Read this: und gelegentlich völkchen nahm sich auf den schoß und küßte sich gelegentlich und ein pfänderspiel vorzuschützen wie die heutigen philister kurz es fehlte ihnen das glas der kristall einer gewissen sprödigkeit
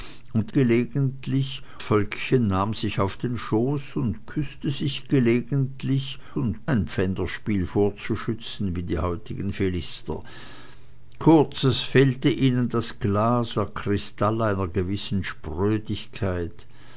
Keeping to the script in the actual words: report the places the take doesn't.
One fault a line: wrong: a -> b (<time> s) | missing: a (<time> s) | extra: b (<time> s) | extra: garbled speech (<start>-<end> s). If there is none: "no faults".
no faults